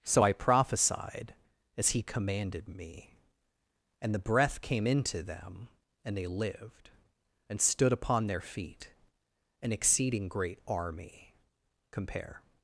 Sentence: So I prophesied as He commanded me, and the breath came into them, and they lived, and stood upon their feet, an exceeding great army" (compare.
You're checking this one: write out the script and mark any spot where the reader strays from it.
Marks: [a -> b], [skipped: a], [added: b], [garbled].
So I prophesied as He commanded me, and the breath came into them, and they lived, and stood upon their feet, an exceeding great army" (compare.